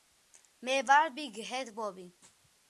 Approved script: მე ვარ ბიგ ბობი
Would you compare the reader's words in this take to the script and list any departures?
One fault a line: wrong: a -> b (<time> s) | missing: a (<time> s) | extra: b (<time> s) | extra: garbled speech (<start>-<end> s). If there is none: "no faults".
extra: ჰედ (1.5 s)